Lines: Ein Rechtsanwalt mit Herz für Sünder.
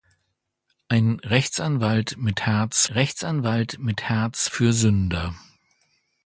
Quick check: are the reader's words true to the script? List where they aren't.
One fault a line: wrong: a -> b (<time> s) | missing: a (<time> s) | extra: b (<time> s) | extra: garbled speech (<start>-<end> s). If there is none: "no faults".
extra: Rechtsanwalt mit Herz (2.8 s)